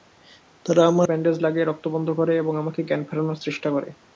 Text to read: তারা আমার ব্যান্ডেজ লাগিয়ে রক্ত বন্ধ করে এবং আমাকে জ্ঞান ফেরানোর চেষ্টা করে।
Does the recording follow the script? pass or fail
pass